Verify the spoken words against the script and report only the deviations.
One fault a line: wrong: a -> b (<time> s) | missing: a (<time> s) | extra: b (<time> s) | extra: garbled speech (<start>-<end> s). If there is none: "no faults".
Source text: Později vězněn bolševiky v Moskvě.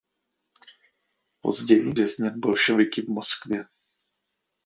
no faults